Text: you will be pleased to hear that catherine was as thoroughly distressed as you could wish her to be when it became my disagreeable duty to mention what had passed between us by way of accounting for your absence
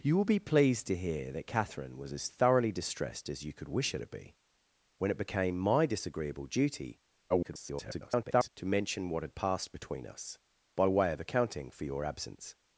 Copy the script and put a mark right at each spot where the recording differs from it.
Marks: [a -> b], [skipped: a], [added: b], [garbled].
you will be pleased to hear that catherine was as thoroughly distressed as you could wish her to be when it became my disagreeable duty [garbled] to mention what had passed between us by way of accounting for your absence